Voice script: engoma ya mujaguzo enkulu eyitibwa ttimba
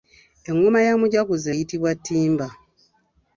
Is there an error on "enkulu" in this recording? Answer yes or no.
yes